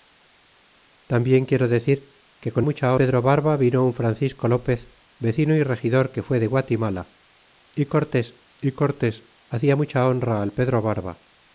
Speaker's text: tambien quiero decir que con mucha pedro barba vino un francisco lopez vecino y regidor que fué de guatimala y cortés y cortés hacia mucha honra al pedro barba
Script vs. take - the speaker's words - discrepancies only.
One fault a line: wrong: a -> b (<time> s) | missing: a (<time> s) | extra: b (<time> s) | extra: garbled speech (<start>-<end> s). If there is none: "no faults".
no faults